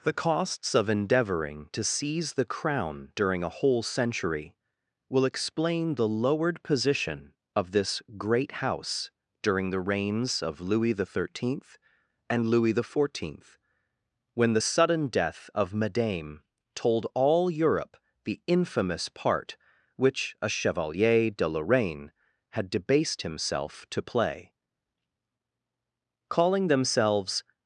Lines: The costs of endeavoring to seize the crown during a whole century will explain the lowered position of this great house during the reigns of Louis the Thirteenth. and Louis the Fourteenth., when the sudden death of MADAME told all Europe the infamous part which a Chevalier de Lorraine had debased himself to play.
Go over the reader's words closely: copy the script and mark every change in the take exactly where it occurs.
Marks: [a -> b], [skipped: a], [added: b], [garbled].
The costs of endeavoring to seize the crown during a whole century will explain the lowered position of this great house during the reigns of Louis the Thirteenth. and Louis the Fourteenth., when the sudden death of MADAME told all Europe the infamous part which a Chevalier de Lorraine had debased himself to play. [added: Calling themselves]